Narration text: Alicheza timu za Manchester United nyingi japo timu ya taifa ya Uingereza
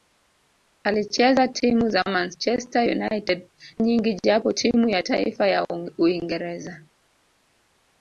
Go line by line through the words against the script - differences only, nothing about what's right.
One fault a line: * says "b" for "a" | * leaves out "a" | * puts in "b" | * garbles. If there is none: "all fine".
all fine